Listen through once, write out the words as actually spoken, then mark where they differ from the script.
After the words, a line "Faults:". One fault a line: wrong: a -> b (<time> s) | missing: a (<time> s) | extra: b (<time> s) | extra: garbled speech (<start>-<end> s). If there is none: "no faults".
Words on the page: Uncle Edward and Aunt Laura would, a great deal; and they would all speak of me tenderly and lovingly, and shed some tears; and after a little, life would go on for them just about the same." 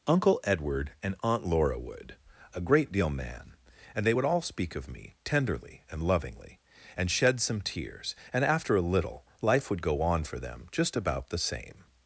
Uncle Edward and Aunt Laura would, a great deal; man and they would all speak of me tenderly and lovingly, and shed some tears; and after a little, life would go on for them just about the same."
Faults:
extra: man (3.1 s)